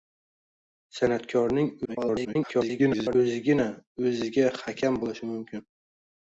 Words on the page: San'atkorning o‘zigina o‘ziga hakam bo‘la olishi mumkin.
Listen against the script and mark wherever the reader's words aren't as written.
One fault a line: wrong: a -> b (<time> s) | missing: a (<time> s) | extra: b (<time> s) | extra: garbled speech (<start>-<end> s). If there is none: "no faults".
extra: garbled speech (1.8-3.2 s)
missing: bo‘la (5.0 s)